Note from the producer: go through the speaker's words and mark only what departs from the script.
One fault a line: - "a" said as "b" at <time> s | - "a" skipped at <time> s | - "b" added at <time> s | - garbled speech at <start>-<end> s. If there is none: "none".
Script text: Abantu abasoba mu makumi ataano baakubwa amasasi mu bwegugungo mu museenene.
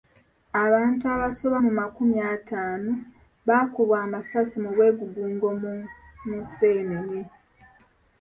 none